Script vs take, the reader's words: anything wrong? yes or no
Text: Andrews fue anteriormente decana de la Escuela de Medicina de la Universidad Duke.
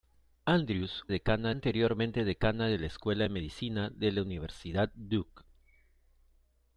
yes